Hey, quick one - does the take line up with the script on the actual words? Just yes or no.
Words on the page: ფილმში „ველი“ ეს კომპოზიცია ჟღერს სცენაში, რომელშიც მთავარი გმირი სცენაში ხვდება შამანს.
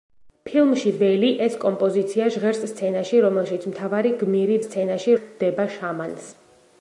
yes